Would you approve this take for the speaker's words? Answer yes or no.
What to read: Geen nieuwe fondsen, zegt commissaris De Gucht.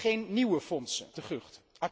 no